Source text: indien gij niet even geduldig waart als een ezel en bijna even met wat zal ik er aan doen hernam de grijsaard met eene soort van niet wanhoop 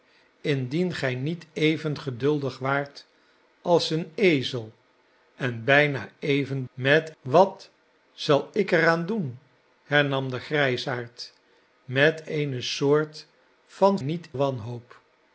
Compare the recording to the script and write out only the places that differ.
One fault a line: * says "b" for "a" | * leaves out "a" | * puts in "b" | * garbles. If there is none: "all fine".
all fine